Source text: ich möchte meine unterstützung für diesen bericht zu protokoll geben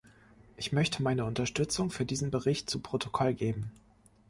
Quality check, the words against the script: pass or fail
pass